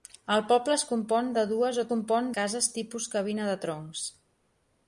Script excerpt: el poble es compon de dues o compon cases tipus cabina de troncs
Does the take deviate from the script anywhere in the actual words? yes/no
no